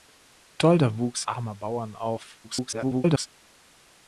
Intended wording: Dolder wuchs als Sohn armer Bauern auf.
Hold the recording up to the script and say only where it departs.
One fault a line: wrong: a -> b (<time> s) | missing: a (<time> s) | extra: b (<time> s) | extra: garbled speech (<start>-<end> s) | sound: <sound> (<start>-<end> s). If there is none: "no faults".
missing: als Sohn (1.3 s)
extra: garbled speech (2.4-3.3 s)